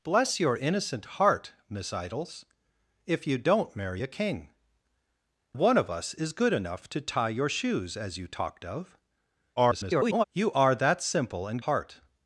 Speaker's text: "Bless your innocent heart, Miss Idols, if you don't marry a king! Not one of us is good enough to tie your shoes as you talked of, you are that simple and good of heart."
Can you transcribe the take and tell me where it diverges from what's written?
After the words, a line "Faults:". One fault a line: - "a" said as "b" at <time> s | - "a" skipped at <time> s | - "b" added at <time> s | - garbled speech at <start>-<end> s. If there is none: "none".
"Bless your innocent heart, Miss Idols, if you don't marry a king! One of us is good enough to tie your shoes as you talked of, [garbled] you are that simple and heart."
Faults:
- "Not" skipped at 4.5 s
- garbled speech at 9.6-10.2 s
- "good of" skipped at 11.6 s